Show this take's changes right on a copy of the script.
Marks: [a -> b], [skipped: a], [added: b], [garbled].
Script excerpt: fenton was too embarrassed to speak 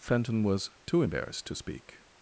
fenton was too embarrassed to speak